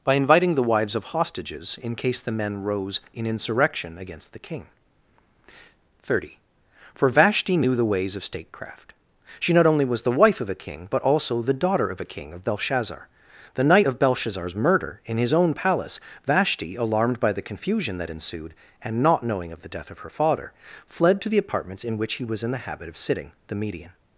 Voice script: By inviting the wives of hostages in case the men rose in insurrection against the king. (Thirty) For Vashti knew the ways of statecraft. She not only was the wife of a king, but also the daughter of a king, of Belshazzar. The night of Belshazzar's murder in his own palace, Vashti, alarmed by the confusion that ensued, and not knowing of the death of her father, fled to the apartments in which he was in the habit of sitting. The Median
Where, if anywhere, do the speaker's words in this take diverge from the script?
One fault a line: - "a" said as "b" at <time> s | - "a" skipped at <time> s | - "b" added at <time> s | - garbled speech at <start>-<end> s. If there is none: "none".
none